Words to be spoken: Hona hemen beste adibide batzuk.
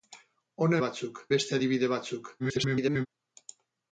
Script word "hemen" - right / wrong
wrong